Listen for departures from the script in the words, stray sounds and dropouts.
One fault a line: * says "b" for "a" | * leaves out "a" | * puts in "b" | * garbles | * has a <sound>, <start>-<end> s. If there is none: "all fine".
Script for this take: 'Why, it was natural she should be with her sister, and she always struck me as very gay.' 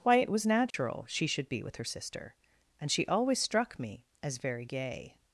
* has a dropout, 0.7-0.7 s